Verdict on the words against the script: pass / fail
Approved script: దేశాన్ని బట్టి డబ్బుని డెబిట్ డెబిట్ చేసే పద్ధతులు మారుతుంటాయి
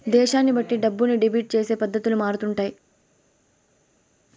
fail